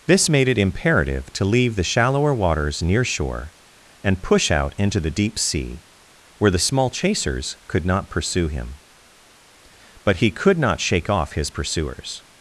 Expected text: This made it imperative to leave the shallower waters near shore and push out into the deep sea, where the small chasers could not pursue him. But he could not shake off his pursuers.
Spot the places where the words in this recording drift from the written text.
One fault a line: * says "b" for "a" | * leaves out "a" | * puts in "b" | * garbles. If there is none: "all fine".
all fine